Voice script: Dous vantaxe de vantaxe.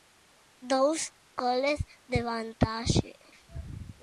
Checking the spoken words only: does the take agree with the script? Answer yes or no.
no